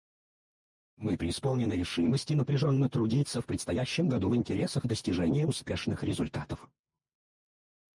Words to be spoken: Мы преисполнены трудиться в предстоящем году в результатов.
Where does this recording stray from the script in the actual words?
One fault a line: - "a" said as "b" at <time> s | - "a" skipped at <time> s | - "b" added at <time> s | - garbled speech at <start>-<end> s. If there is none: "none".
- "решимости напряженно" added at 1.7 s
- "интересах достижения успешных" added at 4.3 s